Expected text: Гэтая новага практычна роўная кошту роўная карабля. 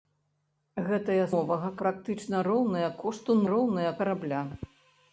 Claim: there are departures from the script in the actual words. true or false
false